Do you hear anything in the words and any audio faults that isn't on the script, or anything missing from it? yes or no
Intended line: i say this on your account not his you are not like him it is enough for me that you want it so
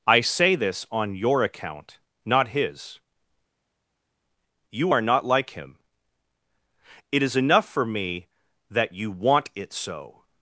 no